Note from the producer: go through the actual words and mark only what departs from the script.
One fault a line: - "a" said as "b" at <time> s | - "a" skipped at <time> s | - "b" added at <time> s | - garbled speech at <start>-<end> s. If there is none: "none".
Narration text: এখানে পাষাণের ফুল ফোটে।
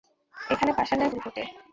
none